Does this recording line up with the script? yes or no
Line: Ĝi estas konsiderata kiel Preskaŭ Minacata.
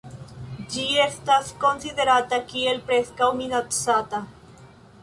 yes